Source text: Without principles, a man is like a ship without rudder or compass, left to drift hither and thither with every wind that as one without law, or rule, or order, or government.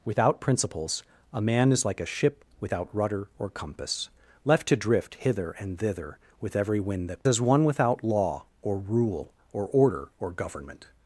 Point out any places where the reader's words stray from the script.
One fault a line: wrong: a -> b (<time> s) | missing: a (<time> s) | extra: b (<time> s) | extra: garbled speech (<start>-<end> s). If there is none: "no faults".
no faults